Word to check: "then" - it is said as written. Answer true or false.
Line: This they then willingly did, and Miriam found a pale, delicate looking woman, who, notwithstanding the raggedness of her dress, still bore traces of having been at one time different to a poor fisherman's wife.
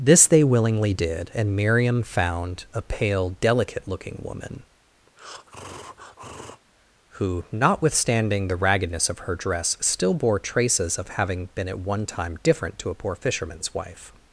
false